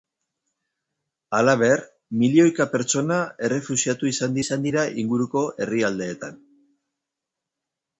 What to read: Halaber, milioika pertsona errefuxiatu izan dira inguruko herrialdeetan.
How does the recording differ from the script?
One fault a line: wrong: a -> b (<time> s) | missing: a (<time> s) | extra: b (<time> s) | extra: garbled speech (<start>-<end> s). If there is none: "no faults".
extra: izan (4.4 s)